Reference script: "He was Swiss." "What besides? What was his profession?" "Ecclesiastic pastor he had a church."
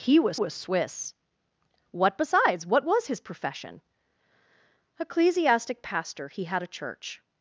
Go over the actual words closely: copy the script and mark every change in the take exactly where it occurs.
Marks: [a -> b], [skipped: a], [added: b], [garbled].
"He was [added: was] Swiss." "What besides? What was his profession?" "Ecclesiastic pastor he had a church."